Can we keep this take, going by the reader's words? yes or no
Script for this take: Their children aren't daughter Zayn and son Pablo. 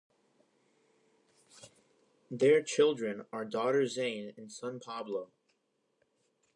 no